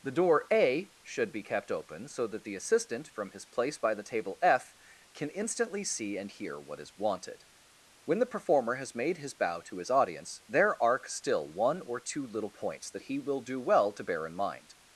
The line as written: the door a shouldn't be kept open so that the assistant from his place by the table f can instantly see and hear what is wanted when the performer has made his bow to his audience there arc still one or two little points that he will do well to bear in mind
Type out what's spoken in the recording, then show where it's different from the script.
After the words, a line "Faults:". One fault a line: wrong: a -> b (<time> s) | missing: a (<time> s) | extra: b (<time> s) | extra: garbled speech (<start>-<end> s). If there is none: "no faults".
the door a should be kept open so that the assistant from his place by the table f can instantly see and hear what is wanted when the performer has made his bow to his audience there arc still one or two little points that he will do well to bear in mind
Faults:
wrong: shouldn't -> should (1.0 s)